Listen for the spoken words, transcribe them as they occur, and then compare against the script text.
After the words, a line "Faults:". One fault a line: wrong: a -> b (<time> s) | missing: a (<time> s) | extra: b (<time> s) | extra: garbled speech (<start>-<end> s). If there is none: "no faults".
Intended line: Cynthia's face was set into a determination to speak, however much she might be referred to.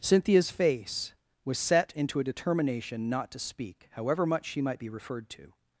Cynthia's face was set into a determination not to speak, however much she might be referred to.
Faults:
extra: not (3.1 s)